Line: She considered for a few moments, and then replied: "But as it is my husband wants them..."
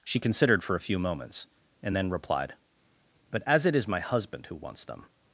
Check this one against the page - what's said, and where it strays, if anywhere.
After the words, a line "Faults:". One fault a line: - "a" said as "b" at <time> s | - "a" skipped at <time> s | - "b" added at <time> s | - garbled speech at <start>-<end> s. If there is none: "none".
She considered for a few moments, and then replied: "But as it is my husband who wants them..."
Faults:
- "who" added at 4.5 s